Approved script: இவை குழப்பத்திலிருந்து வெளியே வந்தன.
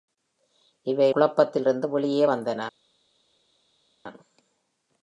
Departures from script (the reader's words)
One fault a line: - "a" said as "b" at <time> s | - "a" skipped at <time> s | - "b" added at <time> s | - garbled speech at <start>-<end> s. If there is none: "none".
none